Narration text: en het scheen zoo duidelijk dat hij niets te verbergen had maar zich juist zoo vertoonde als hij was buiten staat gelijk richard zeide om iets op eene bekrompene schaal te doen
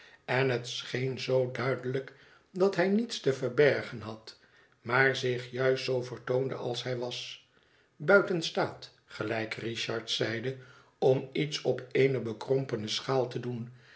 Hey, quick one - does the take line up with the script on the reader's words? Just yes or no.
yes